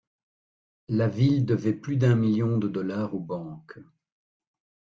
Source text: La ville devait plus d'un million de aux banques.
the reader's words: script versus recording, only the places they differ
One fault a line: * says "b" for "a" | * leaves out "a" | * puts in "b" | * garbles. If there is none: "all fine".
* puts in "dollars"